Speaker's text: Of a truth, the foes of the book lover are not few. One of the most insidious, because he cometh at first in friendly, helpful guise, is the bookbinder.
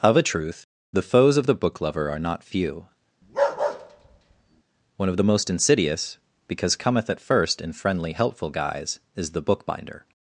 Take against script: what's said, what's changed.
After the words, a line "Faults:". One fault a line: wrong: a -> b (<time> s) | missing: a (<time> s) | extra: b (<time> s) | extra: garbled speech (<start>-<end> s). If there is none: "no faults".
Of a truth, the foes of the book lover are not few. One of the most insidious, because cometh at first in friendly, helpful guise, is the bookbinder.
Faults:
missing: he (6.8 s)